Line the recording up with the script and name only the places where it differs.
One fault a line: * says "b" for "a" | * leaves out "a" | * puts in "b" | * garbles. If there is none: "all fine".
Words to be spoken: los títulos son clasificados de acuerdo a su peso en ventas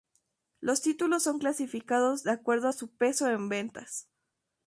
all fine